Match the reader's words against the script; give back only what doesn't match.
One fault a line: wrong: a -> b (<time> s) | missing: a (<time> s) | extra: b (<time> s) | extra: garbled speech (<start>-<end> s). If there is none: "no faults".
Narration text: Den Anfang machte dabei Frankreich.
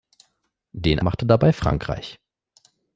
missing: Anfang (1.0 s)